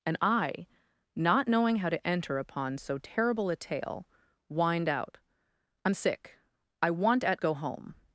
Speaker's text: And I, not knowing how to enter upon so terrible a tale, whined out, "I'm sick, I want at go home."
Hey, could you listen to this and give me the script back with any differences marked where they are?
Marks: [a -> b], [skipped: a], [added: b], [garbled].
And I, not knowing how to enter upon so terrible a tale, whined out, "I'm sick, I want at go home."